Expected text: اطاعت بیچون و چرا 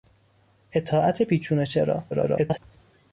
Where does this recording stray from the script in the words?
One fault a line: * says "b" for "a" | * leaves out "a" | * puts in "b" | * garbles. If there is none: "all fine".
* garbles